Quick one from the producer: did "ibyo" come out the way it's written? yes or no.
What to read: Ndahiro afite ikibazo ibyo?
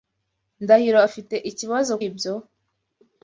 yes